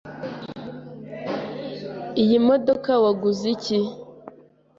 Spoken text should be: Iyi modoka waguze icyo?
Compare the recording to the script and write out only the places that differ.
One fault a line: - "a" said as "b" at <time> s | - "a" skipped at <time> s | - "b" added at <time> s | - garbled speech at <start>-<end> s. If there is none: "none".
- "icyo" said as "iki" at 3.5 s